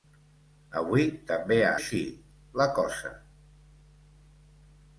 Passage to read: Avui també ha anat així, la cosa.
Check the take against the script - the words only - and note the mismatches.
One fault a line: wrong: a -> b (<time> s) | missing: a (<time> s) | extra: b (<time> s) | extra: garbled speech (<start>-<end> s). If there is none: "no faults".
missing: anat (1.7 s)